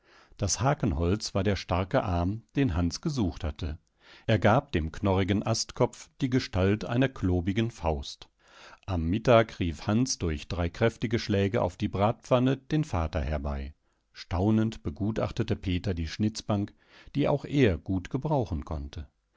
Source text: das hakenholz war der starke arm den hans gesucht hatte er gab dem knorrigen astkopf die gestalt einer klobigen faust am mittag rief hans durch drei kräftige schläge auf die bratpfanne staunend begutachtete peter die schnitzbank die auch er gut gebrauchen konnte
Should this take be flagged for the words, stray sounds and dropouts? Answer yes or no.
yes